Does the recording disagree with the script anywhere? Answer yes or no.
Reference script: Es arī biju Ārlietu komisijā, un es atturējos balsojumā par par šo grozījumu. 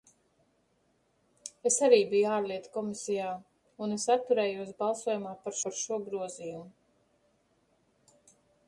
no